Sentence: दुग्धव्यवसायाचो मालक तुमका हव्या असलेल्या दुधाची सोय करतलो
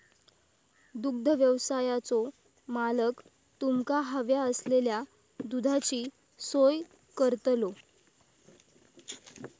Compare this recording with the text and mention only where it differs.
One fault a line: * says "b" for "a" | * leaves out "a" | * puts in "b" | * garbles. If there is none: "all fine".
all fine